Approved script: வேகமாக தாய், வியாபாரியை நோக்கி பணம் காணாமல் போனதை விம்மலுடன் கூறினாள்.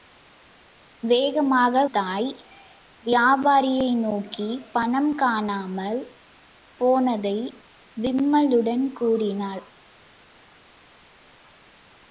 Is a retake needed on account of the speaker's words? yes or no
no